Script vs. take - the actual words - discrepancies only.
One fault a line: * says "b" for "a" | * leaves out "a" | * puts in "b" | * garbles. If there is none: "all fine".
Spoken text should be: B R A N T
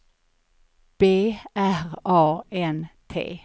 all fine